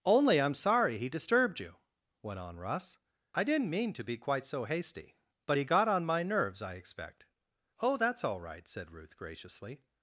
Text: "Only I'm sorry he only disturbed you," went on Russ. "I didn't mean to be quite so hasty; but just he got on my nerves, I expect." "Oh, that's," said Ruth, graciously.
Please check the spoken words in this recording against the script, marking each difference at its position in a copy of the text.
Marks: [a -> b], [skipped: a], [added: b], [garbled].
"Only I'm sorry he [skipped: only] disturbed you," went on Russ. "I didn't mean to be quite so hasty; but [skipped: just] he got on my nerves, I expect." "Oh, that's," [added: all right] said Ruth, graciously.